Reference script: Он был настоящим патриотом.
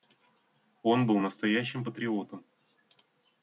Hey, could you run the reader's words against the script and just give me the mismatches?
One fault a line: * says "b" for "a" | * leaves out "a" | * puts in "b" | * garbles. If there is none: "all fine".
all fine